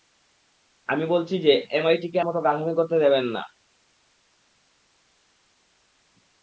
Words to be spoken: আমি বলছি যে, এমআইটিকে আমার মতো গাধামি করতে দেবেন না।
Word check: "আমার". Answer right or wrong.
wrong